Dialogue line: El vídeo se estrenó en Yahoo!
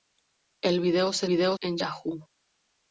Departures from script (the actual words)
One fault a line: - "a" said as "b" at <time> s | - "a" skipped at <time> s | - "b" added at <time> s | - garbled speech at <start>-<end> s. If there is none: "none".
- "estrenó" said as "vídeo" at 1.2 s